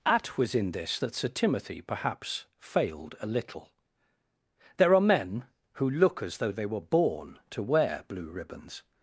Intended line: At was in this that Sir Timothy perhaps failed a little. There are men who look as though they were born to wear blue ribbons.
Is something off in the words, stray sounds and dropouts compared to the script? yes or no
no